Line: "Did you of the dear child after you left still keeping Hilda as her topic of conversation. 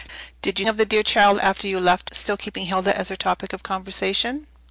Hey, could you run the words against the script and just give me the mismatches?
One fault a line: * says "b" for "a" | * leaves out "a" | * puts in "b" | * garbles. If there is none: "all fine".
all fine